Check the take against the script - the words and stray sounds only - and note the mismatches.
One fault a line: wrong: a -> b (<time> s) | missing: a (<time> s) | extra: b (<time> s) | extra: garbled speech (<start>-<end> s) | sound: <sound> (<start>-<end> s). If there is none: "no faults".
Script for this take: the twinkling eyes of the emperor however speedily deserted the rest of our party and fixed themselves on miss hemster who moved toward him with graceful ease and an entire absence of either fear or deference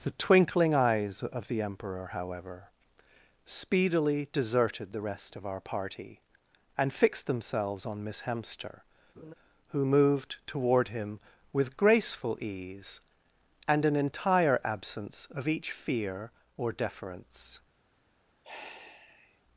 sound: laugh (9.2-9.3 s)
wrong: either -> each (15.5 s)
sound: sigh (18.4-19.4 s)